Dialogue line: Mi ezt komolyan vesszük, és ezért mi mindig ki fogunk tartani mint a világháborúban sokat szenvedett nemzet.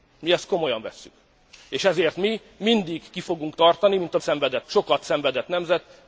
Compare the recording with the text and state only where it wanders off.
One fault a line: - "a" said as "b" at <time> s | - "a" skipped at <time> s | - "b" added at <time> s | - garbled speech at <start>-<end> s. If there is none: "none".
- "világháborúban" said as "szenvedett" at 4.2 s